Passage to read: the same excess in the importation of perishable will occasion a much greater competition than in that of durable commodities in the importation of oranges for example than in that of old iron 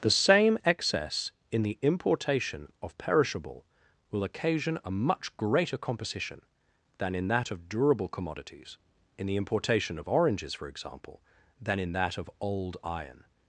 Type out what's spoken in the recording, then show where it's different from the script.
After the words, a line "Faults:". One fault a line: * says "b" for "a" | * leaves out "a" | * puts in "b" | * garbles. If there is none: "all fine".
the same excess in the importation of perishable will occasion a much greater composition than in that of durable commodities in the importation of oranges for example than in that of old iron
Faults:
* says "composition" for "competition"